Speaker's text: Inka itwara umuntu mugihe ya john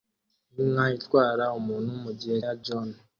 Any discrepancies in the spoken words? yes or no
no